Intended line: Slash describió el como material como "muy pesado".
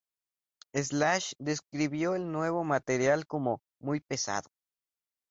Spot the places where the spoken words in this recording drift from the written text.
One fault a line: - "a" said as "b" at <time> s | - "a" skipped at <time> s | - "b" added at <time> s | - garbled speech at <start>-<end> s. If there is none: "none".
- "como" said as "nuevo" at 2.3 s